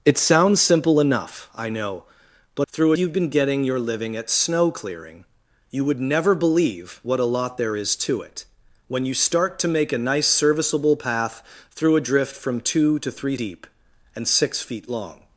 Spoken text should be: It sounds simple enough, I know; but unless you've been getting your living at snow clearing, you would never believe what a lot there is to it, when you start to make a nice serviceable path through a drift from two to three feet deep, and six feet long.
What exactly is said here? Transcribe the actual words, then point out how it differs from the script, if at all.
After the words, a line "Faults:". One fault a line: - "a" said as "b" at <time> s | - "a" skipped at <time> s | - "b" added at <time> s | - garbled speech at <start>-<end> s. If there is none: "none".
It sounds simple enough, I know; but through you've been getting your living at snow clearing, you would never believe what a lot there is to it, when you start to make a nice serviceable path through a drift from two to three deep, and six feet long.
Faults:
- "unless" said as "through" at 2.7 s
- "feet" skipped at 13.4 s